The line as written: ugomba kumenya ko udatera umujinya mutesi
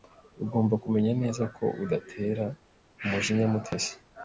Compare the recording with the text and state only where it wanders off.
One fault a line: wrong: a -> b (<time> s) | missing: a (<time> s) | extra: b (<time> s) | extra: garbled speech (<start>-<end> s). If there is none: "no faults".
extra: neza (1.2 s)